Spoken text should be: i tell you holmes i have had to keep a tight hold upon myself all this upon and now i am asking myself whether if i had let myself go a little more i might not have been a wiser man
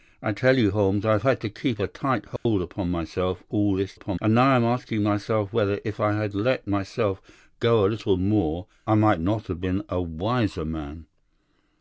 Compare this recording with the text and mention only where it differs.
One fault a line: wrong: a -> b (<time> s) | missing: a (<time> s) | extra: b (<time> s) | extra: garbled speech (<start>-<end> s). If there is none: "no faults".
no faults